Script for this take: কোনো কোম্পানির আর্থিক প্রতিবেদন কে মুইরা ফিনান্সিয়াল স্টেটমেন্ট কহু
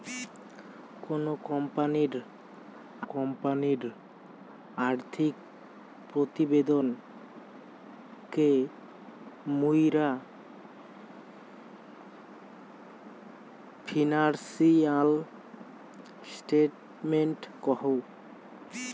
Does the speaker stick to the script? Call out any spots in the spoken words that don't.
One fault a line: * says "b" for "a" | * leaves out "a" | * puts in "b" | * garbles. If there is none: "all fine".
* puts in "কোম্পানির"